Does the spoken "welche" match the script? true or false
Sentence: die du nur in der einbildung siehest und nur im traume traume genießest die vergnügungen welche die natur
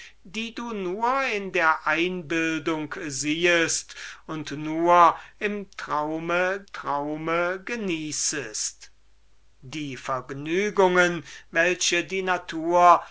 true